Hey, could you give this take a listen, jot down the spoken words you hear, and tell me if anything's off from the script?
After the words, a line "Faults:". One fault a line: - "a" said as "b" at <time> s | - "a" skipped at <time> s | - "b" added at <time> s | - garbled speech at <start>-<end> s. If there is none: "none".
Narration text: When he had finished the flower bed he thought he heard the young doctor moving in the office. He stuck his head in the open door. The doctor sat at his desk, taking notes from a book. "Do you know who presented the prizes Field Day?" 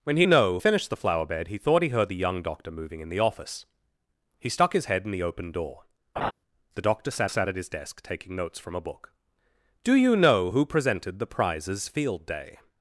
When he know finished the flower bed he thought he heard the young doctor moving in the office. He stuck his head in the open door. The doctor sat sat at his desk, taking notes from a book. "Do you know who presented the prizes Field Day?"
Faults:
- "had" said as "know" at 0.2 s
- "sat" added at 7.3 s